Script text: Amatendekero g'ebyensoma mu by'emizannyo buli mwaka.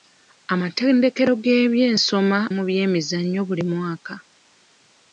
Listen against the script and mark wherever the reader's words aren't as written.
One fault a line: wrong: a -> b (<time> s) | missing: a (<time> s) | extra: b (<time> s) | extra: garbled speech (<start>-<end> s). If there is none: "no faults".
no faults